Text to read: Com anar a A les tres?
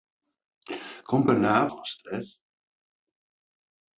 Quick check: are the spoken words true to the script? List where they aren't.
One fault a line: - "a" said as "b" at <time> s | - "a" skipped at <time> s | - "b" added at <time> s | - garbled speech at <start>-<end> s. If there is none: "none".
none